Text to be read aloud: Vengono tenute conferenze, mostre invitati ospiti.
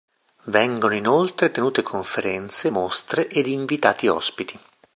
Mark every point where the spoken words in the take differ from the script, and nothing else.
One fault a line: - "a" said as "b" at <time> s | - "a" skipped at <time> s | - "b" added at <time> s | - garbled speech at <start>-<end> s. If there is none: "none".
- "inoltre" added at 0.9 s
- "ed" added at 3.3 s